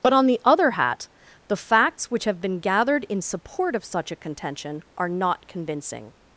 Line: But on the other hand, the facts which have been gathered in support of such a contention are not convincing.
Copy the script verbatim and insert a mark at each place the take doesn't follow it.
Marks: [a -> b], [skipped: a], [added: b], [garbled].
But on the other [hand, -> hat] the facts which have been gathered in support of such a contention are not convincing.